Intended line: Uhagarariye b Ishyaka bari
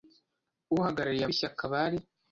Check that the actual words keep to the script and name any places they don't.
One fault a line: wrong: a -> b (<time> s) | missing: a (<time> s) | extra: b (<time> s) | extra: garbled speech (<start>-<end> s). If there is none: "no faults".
no faults